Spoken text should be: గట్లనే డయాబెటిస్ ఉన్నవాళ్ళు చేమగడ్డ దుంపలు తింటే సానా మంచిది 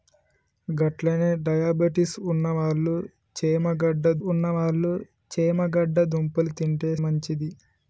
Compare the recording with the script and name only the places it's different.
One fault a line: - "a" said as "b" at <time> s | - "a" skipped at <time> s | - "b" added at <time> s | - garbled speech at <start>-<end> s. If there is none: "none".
- "ఉన్నవాళ్ళు చేమగడ్డ" added at 4.3 s
- "సానా" skipped at 6.9 s